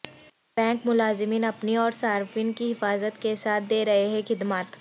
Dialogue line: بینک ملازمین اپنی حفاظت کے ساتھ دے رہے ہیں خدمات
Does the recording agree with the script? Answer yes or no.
no